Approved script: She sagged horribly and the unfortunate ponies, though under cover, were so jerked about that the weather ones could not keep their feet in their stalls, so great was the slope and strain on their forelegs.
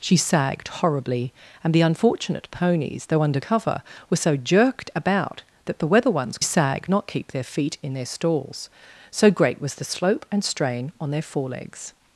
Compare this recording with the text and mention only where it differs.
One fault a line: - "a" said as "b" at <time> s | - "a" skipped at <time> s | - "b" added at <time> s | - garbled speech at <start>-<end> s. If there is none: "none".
- "could" said as "sagged" at 6.4 s